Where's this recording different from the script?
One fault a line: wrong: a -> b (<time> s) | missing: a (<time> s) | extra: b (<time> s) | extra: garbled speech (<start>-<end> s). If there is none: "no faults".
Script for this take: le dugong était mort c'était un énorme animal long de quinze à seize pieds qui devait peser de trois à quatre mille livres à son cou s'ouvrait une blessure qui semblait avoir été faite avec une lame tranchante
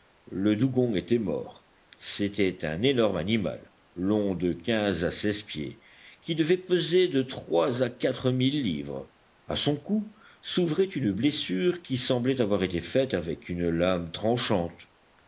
no faults